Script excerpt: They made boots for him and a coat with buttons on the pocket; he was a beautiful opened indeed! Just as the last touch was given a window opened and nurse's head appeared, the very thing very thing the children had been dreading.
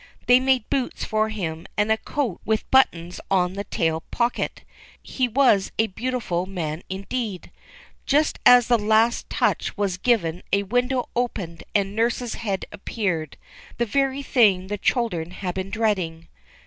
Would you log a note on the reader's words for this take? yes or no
yes